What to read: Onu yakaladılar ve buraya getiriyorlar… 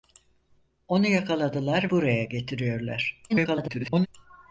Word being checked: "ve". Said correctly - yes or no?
no